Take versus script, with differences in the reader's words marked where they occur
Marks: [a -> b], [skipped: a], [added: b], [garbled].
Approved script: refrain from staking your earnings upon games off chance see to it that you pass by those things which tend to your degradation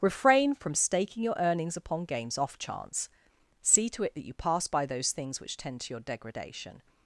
refrain from staking your earnings upon games off chance see to it that you pass by those things which tend to your degradation